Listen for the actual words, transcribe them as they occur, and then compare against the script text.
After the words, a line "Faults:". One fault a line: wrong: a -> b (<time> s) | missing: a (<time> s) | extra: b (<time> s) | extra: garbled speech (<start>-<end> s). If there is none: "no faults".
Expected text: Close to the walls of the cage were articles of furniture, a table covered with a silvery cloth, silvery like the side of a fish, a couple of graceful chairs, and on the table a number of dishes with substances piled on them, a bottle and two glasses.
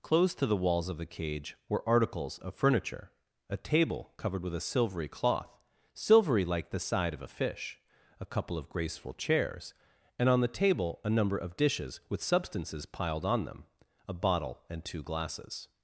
Close to the walls of the cage were articles of furniture, a table covered with a silvery cloth, silvery like the side of a fish, a couple of graceful chairs, and on the table a number of dishes with substances piled on them, a bottle and two glasses.
Faults:
no faults